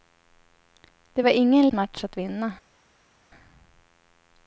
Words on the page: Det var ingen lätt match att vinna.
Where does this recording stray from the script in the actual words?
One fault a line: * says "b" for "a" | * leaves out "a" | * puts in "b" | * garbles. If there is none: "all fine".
* leaves out "lätt"